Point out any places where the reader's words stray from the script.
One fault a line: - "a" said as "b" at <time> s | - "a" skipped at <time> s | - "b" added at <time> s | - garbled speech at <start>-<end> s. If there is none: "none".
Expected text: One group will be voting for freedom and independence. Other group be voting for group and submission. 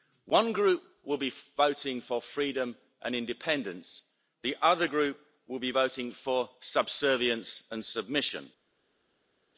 - "The" added at 4.4 s
- "will" added at 5.5 s
- "group" said as "subservience" at 6.6 s